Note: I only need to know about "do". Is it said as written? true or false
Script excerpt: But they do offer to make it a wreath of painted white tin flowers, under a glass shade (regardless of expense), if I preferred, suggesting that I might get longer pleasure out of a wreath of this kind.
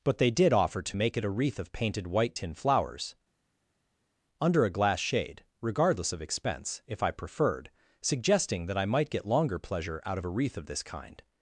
false